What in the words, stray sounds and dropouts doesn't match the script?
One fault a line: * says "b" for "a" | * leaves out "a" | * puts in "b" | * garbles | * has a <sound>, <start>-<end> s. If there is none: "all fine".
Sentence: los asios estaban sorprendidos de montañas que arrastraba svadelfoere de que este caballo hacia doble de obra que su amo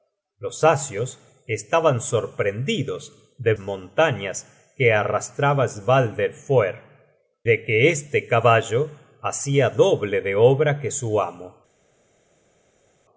all fine